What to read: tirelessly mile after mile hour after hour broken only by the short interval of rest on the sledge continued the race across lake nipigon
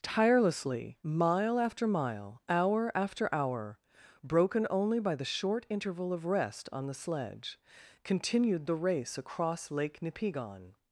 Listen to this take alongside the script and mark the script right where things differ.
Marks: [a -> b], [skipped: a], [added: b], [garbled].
tirelessly mile after mile hour after hour broken only by the short interval of rest on the sledge continued the race across lake nipigon